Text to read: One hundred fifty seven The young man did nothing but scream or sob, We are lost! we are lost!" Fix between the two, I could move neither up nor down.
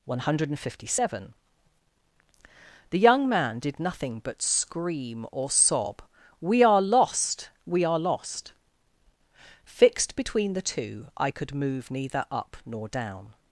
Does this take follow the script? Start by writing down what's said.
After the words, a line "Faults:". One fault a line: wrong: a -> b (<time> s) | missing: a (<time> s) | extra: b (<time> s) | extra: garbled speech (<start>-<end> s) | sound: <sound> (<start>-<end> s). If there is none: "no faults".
One hundred fifty seven The young man did nothing but scream or sob, We are lost! we are lost!" Fixed between the two, I could move neither up nor down.
Faults:
wrong: Fix -> Fixed (9.6 s)